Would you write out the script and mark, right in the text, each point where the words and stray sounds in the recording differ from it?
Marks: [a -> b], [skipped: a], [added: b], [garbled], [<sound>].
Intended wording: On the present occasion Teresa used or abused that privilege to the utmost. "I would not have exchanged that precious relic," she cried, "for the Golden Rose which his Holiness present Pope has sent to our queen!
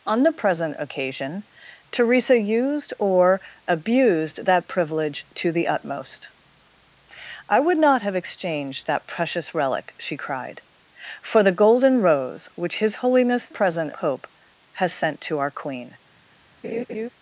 On the present occasion Teresa used or abused that privilege to the utmost. "I would not have exchanged that precious relic," she cried, "for the Golden Rose which his Holiness present Pope has sent to our queen! [laugh]